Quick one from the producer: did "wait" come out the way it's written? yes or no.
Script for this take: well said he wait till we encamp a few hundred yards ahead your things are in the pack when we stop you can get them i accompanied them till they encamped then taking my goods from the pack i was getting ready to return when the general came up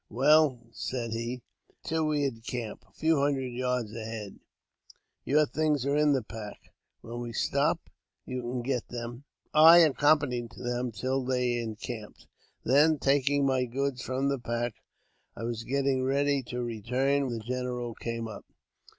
no